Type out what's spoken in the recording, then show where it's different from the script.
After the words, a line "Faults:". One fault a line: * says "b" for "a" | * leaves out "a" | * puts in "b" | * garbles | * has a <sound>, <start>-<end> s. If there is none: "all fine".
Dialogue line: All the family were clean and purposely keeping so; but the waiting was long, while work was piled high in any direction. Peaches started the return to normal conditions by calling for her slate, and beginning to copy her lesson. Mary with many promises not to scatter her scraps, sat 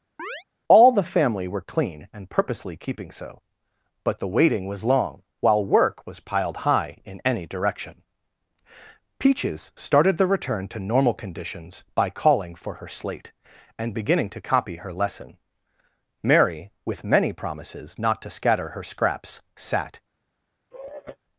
All the family were clean and purposely keeping so; but the waiting was long, while work was piled high in any direction. Peaches started the return to normal conditions by calling for her slate, and beginning to copy her lesson. Mary with many promises not to scatter her scraps, sat
Faults:
* has a chirp, 0.2-0.4 s
* has a sigh, 20.7-21.2 s